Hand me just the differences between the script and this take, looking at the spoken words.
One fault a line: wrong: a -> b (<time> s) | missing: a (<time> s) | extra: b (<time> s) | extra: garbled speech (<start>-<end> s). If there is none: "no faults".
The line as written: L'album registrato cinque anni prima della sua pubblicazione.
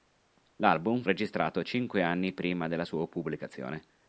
no faults